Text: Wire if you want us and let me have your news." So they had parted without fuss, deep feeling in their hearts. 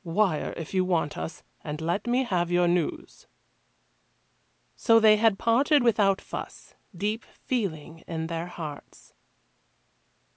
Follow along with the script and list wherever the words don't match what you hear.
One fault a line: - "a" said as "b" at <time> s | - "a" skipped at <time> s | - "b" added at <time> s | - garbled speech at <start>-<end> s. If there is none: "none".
none